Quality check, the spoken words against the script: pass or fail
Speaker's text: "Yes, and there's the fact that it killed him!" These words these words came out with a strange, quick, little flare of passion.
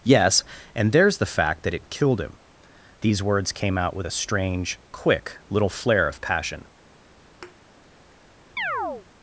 fail